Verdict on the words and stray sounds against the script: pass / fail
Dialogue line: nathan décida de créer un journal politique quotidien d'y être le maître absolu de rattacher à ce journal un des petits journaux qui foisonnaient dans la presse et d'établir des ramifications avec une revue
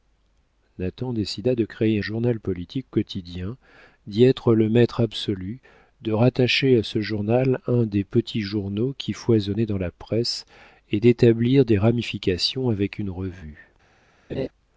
fail